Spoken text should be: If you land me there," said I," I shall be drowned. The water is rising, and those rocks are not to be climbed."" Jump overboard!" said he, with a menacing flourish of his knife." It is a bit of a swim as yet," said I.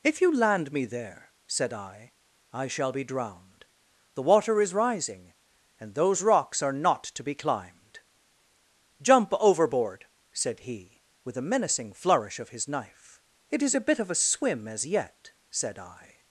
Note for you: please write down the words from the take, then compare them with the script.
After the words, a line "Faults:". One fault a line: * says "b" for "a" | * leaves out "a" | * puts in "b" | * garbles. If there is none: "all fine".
If you land me there," said I," I shall be drowned. The water is rising, and those rocks are not to be climbed."" Jump overboard!" said he, with a menacing flourish of his knife." It is a bit of a swim as yet," said I.
Faults:
all fine